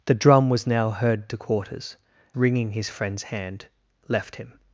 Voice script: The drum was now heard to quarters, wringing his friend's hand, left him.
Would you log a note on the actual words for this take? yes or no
no